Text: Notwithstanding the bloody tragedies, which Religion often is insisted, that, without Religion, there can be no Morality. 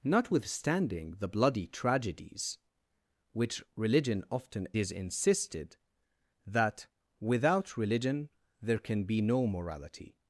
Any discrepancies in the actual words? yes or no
no